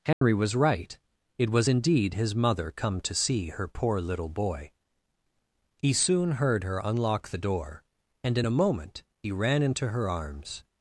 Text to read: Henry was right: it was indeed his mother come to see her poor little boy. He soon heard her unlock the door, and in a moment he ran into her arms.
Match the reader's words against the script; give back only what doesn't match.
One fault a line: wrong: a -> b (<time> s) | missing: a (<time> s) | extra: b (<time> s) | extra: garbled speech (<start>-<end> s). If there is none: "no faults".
no faults